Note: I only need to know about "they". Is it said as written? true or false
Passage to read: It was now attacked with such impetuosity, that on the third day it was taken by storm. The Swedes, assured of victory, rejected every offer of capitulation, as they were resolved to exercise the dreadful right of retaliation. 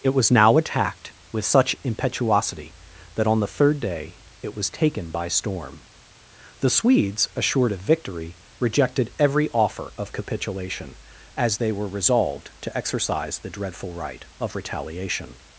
true